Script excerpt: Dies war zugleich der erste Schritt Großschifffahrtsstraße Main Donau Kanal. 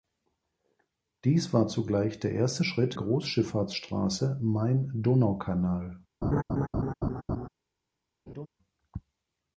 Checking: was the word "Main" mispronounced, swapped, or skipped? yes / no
no